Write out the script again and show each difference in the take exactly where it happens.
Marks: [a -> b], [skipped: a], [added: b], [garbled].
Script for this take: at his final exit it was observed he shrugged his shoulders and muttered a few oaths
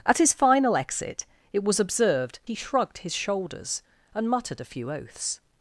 at his final exit it was observed he shrugged his shoulders and muttered a few oaths